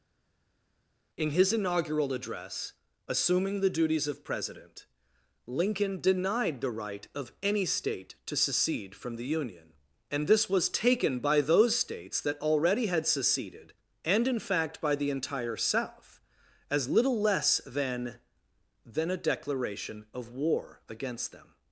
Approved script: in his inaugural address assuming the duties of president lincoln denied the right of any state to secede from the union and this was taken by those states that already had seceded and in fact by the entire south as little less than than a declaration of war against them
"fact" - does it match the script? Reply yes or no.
yes